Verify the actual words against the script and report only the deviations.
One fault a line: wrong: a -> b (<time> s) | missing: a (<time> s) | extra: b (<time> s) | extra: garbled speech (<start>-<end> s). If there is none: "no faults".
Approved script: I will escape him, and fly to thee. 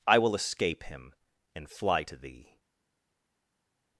no faults